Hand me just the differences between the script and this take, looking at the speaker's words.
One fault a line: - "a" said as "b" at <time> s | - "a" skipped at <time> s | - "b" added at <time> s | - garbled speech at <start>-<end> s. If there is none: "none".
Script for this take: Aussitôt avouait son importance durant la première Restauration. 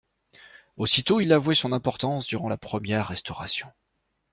- "il" added at 1.2 s